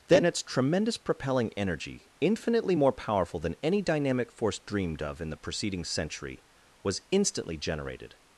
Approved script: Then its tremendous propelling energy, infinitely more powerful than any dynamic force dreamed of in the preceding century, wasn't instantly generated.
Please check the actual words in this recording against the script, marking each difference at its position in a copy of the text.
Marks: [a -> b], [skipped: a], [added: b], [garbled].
Then its tremendous propelling energy, infinitely more powerful than any dynamic force dreamed of in the preceding century, [wasn't -> was] instantly generated.